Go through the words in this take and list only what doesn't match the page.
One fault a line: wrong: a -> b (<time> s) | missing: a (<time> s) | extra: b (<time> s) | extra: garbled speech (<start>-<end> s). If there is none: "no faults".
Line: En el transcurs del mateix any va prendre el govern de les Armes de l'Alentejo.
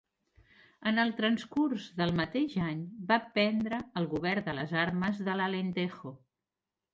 no faults